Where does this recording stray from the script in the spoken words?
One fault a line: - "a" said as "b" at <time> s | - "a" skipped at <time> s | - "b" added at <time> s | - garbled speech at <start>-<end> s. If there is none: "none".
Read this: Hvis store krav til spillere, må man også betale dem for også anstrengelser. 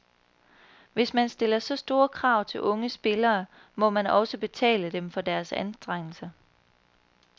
- "man stiller så" added at 1.1 s
- "unge" added at 2.6 s
- "også" said as "deres" at 5.2 s